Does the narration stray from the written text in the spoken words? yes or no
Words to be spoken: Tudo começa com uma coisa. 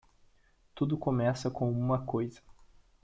no